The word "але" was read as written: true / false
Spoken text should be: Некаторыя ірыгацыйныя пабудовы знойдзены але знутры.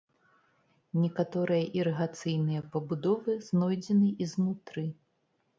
false